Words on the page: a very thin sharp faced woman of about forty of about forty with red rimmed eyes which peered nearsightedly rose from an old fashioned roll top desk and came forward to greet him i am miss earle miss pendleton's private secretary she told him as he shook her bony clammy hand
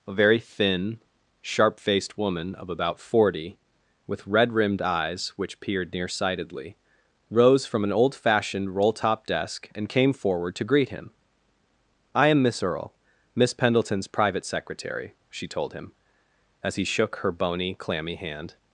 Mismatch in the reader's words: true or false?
true